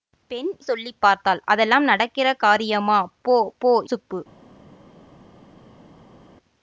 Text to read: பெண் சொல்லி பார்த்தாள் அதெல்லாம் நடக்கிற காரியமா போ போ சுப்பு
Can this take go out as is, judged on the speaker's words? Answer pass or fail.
pass